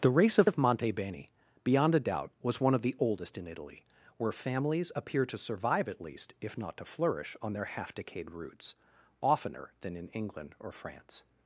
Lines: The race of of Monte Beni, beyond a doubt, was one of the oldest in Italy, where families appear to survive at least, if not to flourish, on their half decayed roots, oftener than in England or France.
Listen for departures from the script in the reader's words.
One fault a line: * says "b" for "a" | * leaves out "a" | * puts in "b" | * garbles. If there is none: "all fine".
all fine